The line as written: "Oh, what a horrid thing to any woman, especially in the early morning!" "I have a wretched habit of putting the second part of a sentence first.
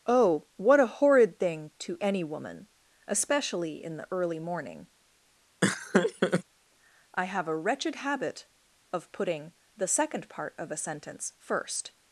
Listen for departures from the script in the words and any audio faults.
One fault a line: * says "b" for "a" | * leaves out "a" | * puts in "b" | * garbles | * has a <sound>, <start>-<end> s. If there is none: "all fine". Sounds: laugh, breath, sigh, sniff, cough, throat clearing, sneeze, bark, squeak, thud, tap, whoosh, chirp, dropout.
* has a laugh, 5.6-6.4 s